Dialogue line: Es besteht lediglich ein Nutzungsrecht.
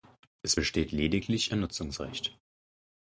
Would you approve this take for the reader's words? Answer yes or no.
yes